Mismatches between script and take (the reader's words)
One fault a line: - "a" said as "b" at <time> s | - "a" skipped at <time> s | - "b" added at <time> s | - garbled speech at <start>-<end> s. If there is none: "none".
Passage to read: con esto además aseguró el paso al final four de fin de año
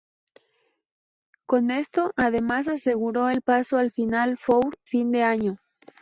- "de" skipped at 4.8 s